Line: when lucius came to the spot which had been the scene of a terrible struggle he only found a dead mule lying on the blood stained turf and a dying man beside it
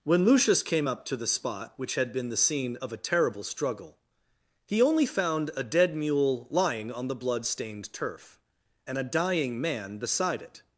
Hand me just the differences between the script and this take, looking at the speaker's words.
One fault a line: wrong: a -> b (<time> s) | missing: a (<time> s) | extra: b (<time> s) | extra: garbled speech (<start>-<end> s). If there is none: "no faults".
extra: up (0.9 s)